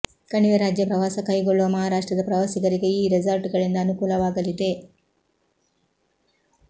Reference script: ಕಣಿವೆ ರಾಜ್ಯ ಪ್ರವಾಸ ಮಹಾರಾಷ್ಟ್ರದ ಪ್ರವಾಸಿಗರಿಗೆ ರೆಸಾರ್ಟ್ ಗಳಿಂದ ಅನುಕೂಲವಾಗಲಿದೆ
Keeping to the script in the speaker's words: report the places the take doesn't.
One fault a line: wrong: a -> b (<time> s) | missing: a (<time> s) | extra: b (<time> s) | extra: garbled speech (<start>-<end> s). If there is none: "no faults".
extra: ಕೈಗೊಳ್ಳುವ (1.3 s)
extra: ಈ (2.9 s)